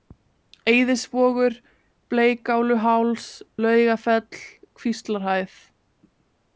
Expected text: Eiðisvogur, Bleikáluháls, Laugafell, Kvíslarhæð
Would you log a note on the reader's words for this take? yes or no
no